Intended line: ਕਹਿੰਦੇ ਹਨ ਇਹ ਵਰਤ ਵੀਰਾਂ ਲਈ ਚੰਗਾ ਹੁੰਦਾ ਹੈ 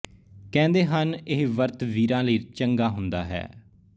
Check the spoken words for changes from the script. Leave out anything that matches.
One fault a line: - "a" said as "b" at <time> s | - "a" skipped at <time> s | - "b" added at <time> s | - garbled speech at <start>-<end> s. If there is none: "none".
none